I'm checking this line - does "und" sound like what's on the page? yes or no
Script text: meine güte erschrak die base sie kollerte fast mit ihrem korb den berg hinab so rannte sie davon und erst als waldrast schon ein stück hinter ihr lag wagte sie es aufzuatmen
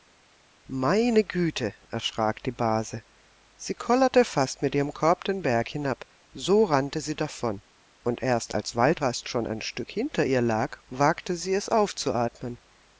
yes